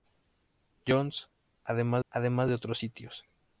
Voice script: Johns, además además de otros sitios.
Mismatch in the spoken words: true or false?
false